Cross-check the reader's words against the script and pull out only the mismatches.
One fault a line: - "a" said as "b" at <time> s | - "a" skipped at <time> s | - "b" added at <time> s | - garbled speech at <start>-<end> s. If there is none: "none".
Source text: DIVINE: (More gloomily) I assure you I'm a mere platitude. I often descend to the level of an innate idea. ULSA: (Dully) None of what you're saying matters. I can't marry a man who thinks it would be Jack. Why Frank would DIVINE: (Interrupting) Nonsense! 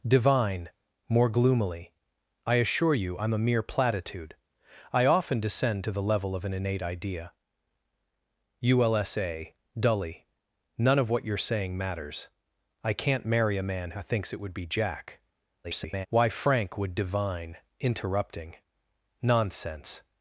- garbled speech at 15.6-16.1 s